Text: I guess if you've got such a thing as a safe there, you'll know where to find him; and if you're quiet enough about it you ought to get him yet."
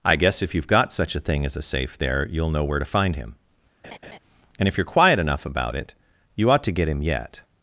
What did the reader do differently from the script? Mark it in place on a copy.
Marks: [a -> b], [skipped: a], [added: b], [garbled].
I guess if you've got such a thing as a safe there, you'll know where to find him; and if you're quiet enough about it you ought to get him yet."